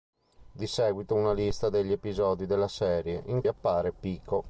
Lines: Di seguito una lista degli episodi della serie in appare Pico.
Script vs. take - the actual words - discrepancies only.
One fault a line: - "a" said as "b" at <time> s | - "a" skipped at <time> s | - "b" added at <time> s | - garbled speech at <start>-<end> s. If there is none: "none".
none